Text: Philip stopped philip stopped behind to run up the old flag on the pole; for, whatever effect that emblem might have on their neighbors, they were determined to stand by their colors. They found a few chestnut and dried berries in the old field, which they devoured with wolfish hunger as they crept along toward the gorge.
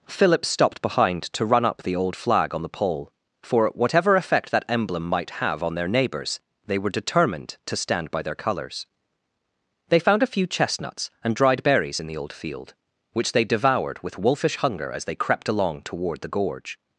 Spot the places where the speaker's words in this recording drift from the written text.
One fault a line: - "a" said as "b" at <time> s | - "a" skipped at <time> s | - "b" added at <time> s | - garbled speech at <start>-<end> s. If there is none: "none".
- "philip stopped" skipped at 0.8 s
- "chestnut" said as "chestnuts" at 10.5 s